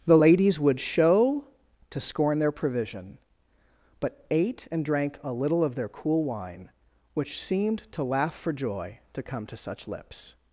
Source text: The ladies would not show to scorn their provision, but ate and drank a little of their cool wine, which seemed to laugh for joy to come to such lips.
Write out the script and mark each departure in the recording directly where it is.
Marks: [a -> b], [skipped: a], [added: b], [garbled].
The ladies would [skipped: not] show to scorn their provision, but ate and drank a little of their cool wine, which seemed to laugh for joy to come to such lips.